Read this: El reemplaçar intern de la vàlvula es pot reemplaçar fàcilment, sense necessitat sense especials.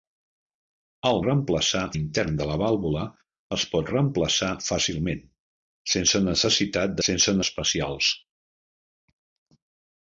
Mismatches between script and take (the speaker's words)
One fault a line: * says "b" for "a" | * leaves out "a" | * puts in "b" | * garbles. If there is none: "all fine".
all fine